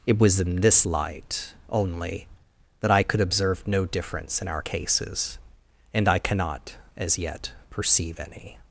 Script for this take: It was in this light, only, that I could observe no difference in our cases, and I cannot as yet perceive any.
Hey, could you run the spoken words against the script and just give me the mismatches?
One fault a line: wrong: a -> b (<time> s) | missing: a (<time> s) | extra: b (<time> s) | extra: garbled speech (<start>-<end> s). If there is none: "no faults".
no faults